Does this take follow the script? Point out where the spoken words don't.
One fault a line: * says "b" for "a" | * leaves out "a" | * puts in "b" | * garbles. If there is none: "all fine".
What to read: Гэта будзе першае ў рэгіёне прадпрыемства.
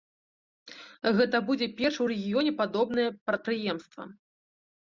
* puts in "падобнае"